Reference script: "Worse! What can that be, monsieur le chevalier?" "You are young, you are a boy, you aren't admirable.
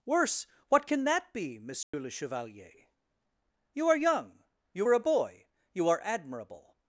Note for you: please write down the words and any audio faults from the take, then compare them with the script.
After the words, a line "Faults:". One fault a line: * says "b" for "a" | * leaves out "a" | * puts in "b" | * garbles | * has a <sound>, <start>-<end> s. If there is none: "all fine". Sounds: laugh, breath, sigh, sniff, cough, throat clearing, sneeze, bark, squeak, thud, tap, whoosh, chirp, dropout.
"Worse! What can that be, monsieur le chevalier?" "You are young, you are a boy, you are admirable.
Faults:
* has a dropout, 1.8-1.9 s
* says "are" for "aren't"